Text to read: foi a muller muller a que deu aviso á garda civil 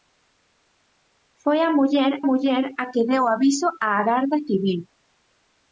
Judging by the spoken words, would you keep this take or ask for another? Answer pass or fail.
pass